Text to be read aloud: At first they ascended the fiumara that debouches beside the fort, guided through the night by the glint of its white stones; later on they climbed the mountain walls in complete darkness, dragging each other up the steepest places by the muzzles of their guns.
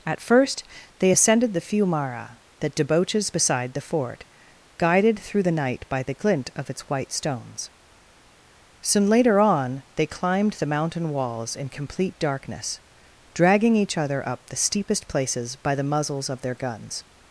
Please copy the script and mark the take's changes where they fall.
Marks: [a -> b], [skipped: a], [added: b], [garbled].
At first they ascended the fiumara that debouches beside the fort, guided through the night by the glint of its white stones; [added: soon] later on they climbed the mountain walls in complete darkness, dragging each other up the steepest places by the muzzles of their guns.